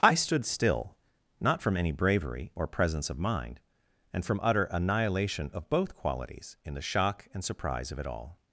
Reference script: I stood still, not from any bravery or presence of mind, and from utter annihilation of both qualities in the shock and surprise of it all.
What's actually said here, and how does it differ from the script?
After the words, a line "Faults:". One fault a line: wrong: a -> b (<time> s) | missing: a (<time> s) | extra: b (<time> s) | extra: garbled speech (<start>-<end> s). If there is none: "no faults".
I stood still, not from any bravery or presence of mind, and from utter annihilation of both qualities in the shock and surprise of it all.
Faults:
no faults